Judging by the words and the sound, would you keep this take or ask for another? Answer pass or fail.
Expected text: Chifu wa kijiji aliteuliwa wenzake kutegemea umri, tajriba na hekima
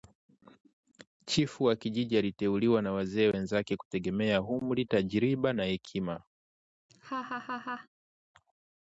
fail